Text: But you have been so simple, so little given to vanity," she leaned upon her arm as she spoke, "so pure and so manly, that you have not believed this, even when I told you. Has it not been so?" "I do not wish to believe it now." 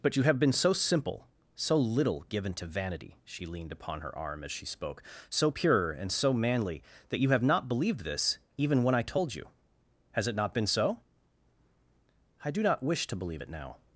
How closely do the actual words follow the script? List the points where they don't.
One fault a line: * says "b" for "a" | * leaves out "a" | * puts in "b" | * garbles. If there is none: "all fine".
all fine